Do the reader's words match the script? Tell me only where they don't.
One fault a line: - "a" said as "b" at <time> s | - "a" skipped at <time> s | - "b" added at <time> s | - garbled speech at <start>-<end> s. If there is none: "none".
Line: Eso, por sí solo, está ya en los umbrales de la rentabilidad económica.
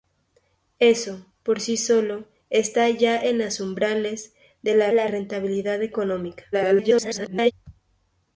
- "la" added at 4.9 s
- garbled speech at 6.5-7.5 s